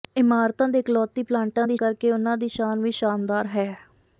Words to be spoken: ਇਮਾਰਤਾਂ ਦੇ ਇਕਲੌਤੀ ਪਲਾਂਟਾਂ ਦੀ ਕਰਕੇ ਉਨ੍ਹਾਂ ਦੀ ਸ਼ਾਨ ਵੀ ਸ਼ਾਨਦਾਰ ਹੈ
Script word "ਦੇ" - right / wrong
right